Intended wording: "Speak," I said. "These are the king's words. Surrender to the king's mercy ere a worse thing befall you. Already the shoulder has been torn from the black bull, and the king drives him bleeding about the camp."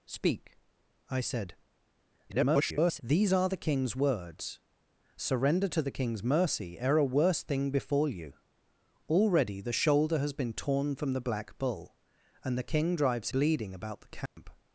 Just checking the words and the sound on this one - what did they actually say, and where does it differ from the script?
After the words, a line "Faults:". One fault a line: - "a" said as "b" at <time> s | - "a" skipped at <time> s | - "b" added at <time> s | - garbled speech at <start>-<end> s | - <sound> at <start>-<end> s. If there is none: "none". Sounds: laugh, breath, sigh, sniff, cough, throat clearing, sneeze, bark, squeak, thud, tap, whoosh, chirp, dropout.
"Speak," I said. [garbled] "These are the king's words. Surrender to the king's mercy ere a worse thing befall you. Already the shoulder has been torn from the black bull, and the king drives bleeding about the camp."
Faults:
- garbled speech at 2.3-3.0 s
- "him" skipped at 13.3 s
- dropout at 14.3-14.4 s